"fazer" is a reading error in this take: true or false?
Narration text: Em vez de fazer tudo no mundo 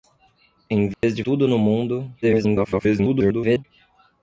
true